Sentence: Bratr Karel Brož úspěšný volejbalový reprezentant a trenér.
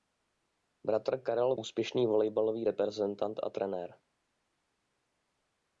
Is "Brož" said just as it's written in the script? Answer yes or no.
no